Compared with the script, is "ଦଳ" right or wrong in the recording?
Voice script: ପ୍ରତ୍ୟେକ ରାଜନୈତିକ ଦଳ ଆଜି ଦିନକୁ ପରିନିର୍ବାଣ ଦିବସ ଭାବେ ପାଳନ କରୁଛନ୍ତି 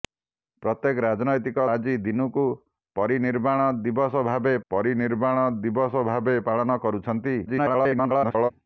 wrong